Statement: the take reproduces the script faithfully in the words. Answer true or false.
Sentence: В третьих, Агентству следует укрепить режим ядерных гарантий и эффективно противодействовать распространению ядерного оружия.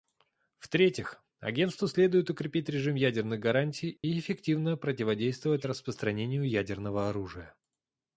true